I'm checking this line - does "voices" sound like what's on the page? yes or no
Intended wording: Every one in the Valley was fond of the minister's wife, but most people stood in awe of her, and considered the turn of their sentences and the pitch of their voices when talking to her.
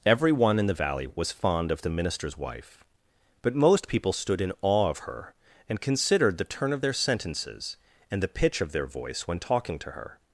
no